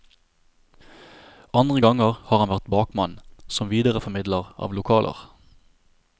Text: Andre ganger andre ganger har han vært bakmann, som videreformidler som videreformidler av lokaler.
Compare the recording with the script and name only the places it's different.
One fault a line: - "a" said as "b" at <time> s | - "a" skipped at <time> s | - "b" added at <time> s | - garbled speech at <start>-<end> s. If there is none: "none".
- "andre ganger" skipped at 2.2 s
- "som videreformidler" skipped at 4.5 s